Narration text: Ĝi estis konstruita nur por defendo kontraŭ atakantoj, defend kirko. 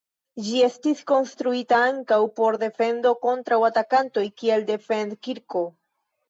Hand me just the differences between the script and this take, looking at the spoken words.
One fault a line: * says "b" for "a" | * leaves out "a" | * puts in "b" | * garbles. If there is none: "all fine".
* says "ankaŭ" for "nur"
* puts in "kiel"